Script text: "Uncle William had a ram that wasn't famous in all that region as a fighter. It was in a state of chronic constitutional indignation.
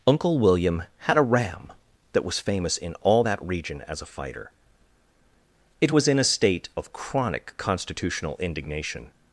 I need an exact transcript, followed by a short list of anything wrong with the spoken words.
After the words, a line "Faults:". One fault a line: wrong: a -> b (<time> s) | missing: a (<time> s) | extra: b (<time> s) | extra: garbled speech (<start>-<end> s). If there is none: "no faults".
"Uncle William had a ram that was famous in all that region as a fighter. It was in a state of chronic constitutional indignation.
Faults:
wrong: wasn't -> was (2.2 s)